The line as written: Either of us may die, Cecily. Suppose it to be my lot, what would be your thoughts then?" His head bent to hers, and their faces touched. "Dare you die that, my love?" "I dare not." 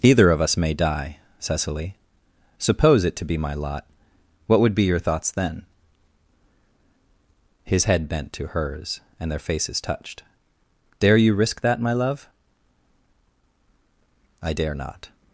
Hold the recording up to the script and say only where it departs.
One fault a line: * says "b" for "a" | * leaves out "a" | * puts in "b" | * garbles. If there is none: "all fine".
* says "risk" for "die"